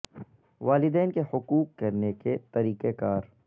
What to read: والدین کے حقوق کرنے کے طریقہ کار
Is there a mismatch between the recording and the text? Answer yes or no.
no